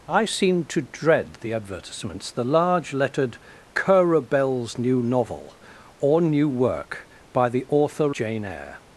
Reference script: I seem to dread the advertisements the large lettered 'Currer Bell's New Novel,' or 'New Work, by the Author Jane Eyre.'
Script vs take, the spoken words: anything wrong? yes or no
no